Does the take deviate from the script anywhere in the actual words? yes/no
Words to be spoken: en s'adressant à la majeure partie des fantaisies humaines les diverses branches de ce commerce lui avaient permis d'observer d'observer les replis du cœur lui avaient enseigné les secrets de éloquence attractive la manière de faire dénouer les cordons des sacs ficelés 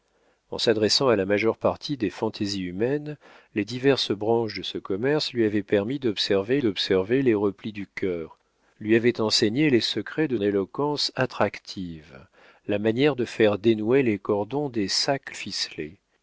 no